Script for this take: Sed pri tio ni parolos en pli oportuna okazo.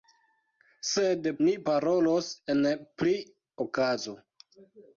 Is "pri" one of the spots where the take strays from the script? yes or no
yes